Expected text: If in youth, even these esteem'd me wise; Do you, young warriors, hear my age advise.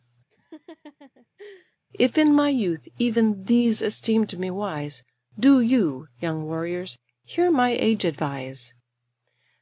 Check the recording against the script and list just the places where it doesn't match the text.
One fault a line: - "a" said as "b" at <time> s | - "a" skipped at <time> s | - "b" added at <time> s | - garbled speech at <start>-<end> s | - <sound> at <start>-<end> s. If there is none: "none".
- laugh at 0.3-1.8 s
- "my" added at 2.3 s